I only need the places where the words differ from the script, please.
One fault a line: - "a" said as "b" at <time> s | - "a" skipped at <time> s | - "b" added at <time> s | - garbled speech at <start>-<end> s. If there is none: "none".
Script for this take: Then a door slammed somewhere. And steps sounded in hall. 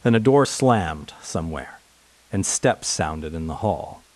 - "the" added at 3.5 s